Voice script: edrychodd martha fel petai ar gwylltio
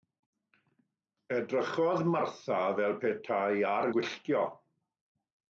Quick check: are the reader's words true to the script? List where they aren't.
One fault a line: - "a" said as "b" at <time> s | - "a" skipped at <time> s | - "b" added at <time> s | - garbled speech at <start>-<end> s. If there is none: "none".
none